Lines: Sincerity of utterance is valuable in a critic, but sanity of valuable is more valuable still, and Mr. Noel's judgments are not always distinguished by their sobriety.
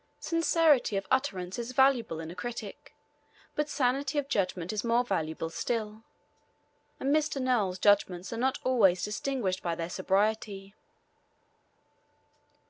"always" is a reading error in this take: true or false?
false